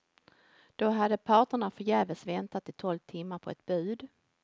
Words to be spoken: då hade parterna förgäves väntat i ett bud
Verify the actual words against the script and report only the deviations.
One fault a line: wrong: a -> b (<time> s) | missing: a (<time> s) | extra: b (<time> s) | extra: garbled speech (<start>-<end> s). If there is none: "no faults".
extra: tolv timmar på (2.7 s)